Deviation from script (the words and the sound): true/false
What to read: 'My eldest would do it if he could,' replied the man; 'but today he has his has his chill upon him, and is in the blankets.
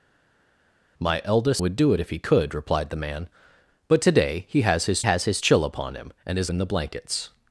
false